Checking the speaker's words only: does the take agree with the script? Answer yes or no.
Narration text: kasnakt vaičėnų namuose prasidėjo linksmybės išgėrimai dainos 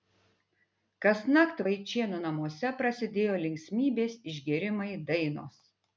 yes